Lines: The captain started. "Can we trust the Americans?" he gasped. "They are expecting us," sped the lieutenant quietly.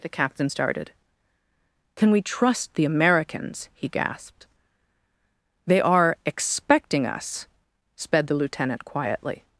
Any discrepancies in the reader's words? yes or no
no